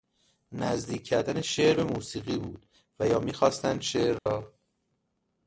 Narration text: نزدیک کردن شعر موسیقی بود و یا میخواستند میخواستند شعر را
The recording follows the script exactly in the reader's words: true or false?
false